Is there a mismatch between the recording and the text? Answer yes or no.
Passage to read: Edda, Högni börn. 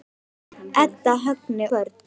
no